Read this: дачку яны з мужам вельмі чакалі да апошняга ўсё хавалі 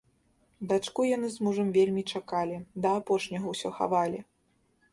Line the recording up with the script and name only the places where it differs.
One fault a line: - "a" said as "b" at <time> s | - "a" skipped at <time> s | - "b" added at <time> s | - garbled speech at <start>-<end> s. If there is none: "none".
none